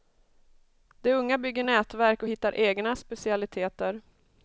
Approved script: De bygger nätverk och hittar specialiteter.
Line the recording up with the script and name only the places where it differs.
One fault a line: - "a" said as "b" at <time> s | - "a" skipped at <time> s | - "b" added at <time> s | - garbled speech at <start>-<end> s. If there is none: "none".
- "unga" added at 1.1 s
- "egna" added at 2.6 s